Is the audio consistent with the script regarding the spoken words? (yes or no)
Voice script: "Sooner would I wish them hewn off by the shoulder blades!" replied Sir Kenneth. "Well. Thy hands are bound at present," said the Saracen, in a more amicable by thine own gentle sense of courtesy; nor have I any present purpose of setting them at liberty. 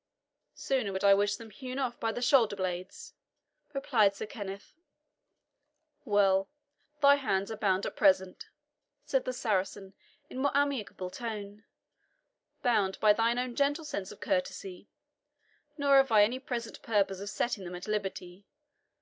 no